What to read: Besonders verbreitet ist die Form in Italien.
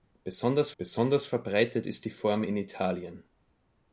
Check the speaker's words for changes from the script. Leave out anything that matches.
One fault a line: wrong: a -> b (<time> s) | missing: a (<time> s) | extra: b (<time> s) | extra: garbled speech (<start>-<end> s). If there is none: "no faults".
extra: besonders (0.8 s)